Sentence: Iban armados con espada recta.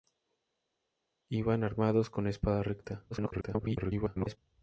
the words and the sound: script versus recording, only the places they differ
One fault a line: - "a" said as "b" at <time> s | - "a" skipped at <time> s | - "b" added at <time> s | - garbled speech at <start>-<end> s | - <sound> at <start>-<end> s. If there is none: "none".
- garbled speech at 3.1-4.4 s